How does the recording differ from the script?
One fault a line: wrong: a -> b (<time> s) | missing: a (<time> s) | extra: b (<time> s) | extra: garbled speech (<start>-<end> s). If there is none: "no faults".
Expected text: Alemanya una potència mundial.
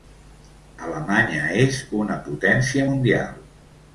extra: és (1.6 s)